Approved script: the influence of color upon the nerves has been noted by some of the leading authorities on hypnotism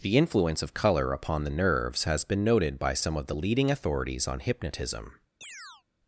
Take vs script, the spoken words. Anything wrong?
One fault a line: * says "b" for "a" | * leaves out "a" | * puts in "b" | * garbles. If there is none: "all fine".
all fine